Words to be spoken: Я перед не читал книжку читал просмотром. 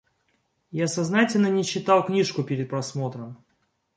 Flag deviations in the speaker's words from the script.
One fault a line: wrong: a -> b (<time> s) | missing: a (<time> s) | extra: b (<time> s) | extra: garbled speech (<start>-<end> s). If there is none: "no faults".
wrong: перед -> сознательно (0.9 s)
wrong: читал -> перед (2.4 s)